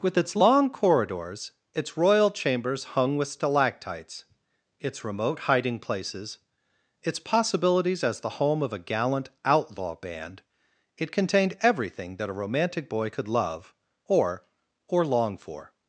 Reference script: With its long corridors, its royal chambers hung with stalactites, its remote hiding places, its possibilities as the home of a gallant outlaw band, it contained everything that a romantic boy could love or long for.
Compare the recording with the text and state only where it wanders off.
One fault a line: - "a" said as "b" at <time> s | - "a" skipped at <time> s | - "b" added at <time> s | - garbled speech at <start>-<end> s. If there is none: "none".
- "or" added at 14.9 s